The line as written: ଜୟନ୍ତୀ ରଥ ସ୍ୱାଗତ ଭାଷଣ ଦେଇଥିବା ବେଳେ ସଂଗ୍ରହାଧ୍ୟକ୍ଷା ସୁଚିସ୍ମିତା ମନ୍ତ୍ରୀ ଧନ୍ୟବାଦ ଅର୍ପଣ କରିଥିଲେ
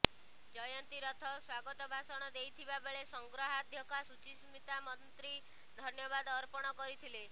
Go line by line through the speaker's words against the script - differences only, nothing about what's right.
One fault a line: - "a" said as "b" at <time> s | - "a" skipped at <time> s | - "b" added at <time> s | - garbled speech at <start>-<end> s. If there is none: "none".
none